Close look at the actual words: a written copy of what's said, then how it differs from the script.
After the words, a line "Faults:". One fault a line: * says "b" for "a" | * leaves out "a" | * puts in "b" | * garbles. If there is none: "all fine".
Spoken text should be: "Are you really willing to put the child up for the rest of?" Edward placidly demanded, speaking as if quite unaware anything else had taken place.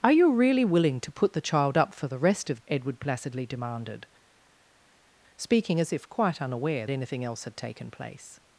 "Are you really willing to put the child up for the rest of?" Edward placidly demanded, speaking as if quite unaware anything else had taken place.
Faults:
all fine